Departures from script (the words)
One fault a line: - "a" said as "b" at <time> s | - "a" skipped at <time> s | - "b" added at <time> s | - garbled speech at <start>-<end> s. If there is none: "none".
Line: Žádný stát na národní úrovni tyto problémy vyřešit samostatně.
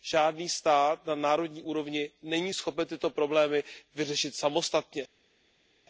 - "není schopen" added at 2.2 s